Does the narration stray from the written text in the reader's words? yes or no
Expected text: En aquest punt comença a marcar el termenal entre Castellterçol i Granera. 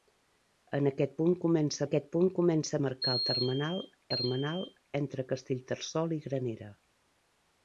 yes